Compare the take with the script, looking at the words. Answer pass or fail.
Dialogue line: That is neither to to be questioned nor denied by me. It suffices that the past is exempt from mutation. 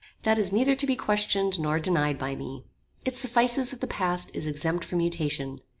fail